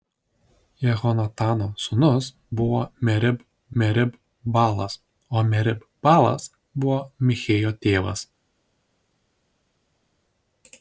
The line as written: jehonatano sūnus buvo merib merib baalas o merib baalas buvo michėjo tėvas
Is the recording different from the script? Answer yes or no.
no